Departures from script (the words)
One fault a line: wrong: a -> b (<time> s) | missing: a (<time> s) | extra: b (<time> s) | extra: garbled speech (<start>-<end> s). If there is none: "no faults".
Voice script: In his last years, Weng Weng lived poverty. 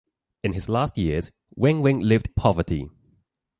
no faults